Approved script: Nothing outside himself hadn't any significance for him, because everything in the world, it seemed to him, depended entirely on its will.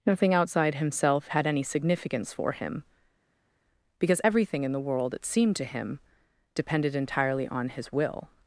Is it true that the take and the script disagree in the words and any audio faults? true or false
true